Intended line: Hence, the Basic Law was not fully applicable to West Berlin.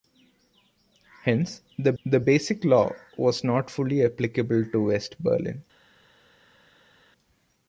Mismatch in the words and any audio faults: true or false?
true